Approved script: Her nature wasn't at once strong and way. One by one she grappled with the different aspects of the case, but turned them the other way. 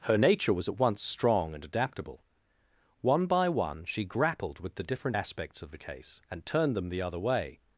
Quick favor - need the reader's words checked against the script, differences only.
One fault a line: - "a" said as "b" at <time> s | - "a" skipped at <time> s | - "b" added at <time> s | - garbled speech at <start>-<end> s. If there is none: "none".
- "wasn't" said as "was" at 0.5 s
- "way" said as "adaptable" at 1.6 s
- "but" said as "and" at 6.3 s